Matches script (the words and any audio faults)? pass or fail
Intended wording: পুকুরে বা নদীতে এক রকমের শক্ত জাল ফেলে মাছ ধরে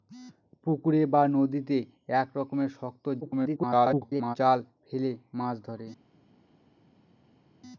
fail